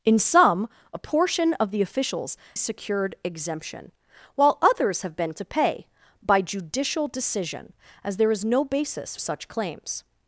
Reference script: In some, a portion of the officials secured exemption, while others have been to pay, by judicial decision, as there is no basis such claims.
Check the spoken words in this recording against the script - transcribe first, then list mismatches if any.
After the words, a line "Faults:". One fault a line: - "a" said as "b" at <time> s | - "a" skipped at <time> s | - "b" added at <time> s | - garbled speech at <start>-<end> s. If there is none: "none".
In some, a portion of the officials secured exemption, while others have been to pay, by judicial decision, as there is no basis such claims.
Faults:
none